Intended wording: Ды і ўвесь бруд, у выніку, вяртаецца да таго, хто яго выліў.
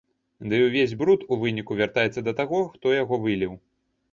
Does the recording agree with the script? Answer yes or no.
yes